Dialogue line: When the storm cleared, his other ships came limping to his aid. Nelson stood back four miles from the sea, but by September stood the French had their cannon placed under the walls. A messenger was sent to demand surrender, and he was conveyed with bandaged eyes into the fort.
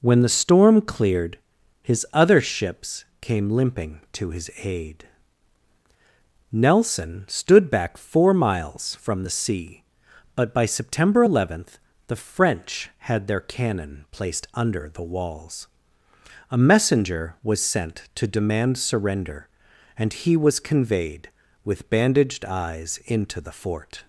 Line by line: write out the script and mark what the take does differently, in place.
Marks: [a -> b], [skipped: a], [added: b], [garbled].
When the storm cleared, his other ships came limping to his aid. Nelson stood back four miles from the sea, but by September [stood -> eleventh] the French had their cannon placed under the walls. A messenger was sent to demand surrender, and he was conveyed with bandaged eyes into the fort.